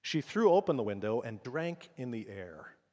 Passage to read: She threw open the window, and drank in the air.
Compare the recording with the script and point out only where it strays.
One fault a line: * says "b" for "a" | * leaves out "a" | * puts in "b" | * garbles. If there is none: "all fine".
all fine